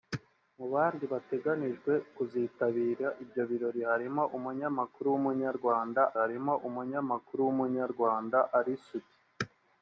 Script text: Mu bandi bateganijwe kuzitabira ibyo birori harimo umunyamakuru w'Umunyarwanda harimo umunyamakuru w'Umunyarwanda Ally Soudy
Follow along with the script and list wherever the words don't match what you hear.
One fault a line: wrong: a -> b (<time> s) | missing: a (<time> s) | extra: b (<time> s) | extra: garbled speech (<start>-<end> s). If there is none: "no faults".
no faults